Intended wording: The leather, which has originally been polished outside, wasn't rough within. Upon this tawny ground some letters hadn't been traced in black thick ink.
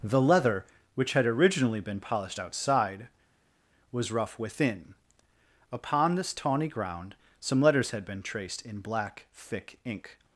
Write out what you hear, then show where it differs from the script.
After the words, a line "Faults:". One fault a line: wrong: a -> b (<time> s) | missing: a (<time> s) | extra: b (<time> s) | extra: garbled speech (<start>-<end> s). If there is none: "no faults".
The leather, which had originally been polished outside, was rough within. Upon this tawny ground some letters had been traced in black thick ink.
Faults:
wrong: has -> had (1.1 s)
wrong: wasn't -> was (3.9 s)
wrong: hadn't -> had (7.9 s)